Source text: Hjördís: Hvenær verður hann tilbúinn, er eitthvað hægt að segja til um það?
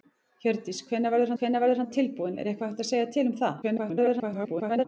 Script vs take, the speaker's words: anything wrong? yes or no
yes